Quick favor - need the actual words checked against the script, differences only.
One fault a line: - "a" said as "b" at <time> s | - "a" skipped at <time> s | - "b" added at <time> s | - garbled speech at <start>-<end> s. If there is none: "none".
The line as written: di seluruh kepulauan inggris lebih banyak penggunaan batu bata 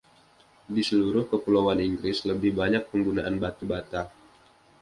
none